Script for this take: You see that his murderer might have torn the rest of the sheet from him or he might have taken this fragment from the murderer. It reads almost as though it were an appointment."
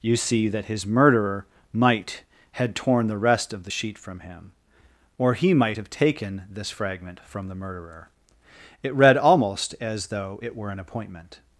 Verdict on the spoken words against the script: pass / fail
fail